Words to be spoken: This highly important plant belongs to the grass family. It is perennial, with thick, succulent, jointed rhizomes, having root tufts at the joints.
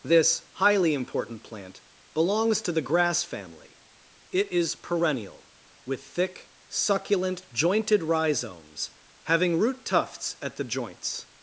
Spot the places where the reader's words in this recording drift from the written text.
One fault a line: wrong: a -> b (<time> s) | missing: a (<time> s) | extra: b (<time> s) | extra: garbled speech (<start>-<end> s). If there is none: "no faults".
no faults